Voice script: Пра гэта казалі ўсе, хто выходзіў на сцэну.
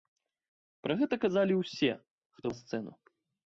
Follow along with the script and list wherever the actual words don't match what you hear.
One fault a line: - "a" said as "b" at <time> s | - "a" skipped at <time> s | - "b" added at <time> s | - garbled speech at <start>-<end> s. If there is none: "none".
- "выходзіў" skipped at 2.5 s